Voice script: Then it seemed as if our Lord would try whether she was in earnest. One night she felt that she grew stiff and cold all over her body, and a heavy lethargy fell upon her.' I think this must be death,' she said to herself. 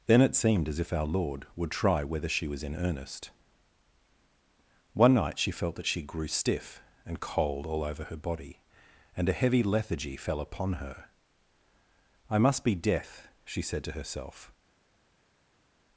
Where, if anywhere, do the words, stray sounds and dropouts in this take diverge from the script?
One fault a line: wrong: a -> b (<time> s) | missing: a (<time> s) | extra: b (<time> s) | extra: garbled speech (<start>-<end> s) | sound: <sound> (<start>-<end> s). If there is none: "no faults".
missing: think this (12.4 s)